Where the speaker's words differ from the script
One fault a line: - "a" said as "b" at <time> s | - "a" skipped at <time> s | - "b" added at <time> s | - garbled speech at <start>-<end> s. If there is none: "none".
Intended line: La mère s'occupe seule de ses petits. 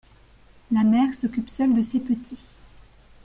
none